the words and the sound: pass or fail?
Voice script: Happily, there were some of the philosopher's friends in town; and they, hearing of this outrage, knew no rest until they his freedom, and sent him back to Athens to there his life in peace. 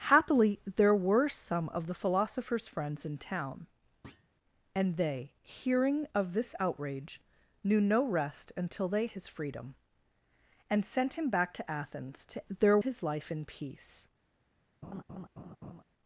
fail